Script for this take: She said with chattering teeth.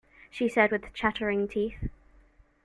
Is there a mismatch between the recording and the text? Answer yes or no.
no